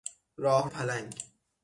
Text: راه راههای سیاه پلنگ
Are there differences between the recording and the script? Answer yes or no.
yes